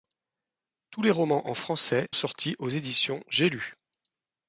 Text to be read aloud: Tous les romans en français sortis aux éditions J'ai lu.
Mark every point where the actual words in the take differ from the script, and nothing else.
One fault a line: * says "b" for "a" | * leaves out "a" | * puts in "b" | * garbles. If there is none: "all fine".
all fine